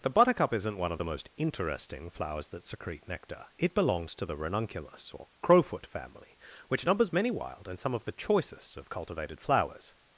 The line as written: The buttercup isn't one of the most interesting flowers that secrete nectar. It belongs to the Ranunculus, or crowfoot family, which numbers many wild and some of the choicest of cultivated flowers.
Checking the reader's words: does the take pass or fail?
pass